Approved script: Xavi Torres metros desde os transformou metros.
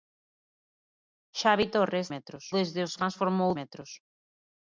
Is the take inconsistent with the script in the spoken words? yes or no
no